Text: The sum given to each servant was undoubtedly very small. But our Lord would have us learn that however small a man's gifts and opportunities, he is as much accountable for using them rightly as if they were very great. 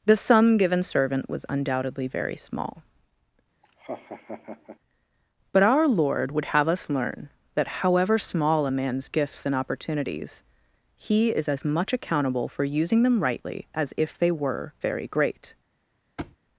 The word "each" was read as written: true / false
false